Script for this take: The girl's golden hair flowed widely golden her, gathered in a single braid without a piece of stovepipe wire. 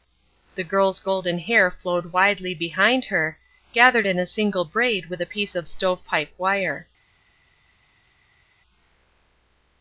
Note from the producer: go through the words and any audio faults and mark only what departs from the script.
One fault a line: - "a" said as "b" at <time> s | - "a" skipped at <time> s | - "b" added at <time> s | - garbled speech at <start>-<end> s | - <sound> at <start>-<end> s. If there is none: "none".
- "golden" said as "behind" at 2.5 s
- "without" said as "with" at 5.1 s